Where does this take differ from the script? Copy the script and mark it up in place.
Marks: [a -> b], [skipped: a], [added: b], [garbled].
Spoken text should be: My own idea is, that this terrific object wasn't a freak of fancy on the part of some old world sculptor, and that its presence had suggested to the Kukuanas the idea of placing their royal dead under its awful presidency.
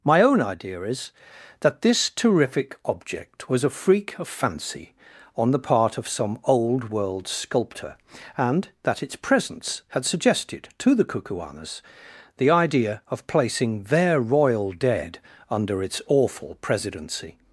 My own idea is, that this terrific object [wasn't -> was] a freak of fancy on the part of some old world sculptor, and that its presence had suggested to the Kukuanas the idea of placing their royal dead under its awful presidency.